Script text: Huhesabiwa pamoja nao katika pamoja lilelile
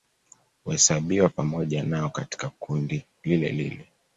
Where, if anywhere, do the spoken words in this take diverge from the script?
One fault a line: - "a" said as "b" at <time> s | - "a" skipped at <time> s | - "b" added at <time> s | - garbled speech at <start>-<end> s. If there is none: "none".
- "pamoja" said as "kundi" at 2.6 s